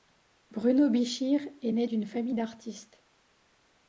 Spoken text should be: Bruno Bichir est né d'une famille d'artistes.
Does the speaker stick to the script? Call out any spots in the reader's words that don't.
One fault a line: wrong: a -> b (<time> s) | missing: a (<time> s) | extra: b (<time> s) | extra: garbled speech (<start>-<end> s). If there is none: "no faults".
no faults